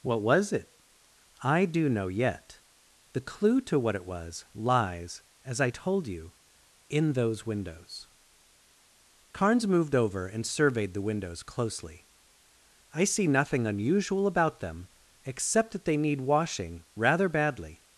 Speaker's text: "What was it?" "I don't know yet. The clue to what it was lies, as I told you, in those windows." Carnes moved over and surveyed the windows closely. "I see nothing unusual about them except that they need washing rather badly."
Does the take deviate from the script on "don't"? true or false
true